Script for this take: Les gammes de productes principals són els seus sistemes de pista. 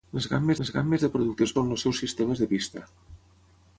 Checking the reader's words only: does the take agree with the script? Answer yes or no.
no